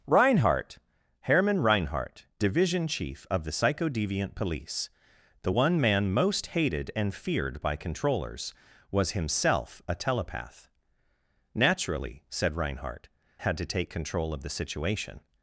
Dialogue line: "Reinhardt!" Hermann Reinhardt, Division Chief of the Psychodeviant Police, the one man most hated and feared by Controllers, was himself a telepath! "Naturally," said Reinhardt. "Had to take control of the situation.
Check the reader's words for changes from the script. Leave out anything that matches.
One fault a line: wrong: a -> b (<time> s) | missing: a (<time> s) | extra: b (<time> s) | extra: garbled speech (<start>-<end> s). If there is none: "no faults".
no faults